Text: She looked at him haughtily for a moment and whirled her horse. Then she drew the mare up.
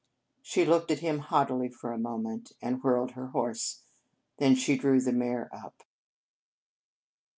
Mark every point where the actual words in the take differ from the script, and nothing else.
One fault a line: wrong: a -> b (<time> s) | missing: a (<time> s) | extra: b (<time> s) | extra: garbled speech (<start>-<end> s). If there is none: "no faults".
no faults